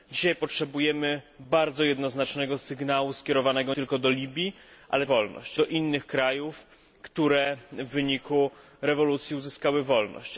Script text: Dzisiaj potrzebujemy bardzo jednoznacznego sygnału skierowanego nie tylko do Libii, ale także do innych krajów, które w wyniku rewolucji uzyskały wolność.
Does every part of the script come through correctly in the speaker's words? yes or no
no